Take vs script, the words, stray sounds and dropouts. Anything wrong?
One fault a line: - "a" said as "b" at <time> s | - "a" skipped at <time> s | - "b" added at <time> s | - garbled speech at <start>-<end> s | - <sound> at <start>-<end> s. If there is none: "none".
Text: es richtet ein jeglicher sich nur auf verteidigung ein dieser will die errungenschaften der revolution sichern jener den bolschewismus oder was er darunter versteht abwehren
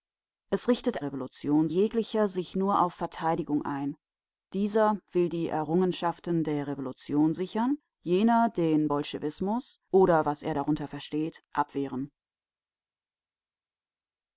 - "ein" said as "revolution" at 1.0 s